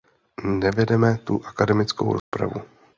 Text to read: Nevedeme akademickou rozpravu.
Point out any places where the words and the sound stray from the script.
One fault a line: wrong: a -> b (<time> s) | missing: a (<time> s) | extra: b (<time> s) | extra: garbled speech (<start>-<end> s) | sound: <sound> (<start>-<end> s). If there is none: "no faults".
extra: tu (1.2 s)
sound: dropout (2.2-2.3 s)